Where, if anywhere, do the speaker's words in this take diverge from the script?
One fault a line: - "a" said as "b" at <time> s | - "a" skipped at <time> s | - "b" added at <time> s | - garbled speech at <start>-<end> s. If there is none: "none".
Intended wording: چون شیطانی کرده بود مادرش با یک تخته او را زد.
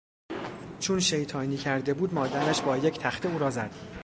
none